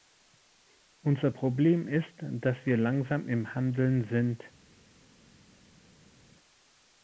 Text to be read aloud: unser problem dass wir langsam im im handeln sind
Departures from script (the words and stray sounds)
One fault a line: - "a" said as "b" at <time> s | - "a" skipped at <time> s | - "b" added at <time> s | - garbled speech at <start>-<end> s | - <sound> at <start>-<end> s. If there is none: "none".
- "ist" added at 1.9 s
- "im" skipped at 3.5 s